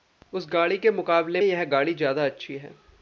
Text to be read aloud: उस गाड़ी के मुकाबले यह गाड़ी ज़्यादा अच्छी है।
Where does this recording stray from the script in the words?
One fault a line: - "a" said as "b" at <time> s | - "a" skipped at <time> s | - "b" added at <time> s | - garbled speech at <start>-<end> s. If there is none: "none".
none